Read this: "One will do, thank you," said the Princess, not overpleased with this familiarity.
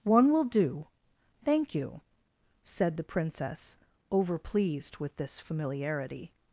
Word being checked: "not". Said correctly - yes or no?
no